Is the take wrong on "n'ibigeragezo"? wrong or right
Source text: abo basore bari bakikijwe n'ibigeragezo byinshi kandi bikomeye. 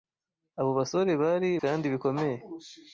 wrong